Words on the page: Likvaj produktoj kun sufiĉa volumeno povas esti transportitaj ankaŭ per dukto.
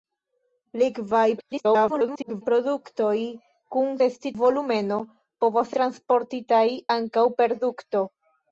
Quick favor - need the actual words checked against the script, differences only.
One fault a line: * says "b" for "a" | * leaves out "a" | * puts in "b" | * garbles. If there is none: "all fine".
* garbles
* says "esti" for "sufiĉa"
* leaves out "esti"